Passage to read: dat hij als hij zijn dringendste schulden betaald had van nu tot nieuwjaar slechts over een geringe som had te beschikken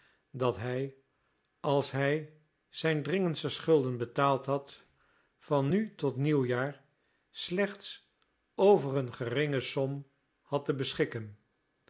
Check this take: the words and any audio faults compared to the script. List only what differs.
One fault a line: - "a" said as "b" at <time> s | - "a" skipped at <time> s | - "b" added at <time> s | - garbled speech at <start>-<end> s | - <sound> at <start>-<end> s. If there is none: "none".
none